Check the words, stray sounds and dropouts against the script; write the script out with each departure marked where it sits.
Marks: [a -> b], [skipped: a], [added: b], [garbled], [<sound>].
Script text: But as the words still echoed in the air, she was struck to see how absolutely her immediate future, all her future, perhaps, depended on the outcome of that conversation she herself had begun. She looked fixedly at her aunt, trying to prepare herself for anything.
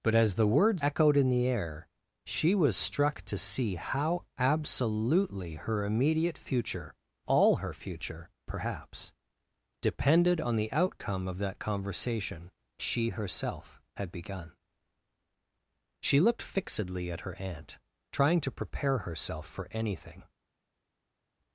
But as the words [skipped: still] echoed in the air, she was struck to see how absolutely her immediate future, all her future, perhaps, depended on the outcome of that conversation she herself had begun. She looked fixedly at her aunt, trying to prepare herself for anything.